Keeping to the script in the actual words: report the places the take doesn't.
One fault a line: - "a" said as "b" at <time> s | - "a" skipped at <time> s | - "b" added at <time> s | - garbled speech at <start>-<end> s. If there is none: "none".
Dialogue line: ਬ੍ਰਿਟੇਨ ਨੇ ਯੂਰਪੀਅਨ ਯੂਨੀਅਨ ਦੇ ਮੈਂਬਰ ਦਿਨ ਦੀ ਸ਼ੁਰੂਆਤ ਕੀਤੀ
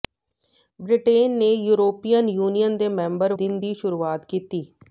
none